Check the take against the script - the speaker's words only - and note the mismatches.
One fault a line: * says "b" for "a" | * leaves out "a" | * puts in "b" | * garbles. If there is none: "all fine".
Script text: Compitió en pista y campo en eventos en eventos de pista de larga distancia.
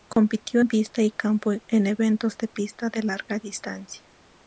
* leaves out "en eventos"